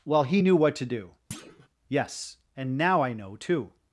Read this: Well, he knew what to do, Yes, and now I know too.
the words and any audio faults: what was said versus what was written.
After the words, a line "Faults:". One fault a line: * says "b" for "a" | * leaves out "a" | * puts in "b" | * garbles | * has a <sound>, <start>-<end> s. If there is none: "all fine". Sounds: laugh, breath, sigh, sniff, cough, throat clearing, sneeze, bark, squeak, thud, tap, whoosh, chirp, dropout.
Well, he knew what to do, Yes, and now I know too.
Faults:
* has a thud, 1.3-1.7 s